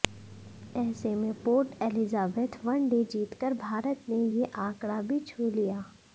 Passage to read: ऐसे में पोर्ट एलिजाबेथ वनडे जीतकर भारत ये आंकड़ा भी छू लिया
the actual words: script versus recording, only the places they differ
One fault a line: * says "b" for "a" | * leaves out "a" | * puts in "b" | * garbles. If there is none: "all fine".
* puts in "ने"